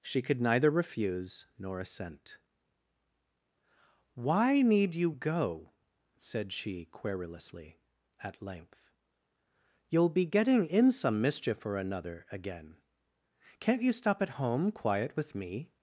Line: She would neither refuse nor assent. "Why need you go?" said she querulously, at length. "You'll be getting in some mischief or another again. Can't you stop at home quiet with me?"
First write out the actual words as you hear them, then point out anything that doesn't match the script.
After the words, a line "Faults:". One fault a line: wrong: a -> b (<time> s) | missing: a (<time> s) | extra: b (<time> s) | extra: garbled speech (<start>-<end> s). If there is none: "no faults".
She could neither refuse nor assent. "Why need you go?" said she querulously, at length. "You'll be getting in some mischief or another again. Can't you stop at home quiet with me?"
Faults:
wrong: would -> could (0.2 s)